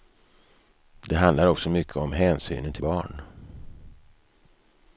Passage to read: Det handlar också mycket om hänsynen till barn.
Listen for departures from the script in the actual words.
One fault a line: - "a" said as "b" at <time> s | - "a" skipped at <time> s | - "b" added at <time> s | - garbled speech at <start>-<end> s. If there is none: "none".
none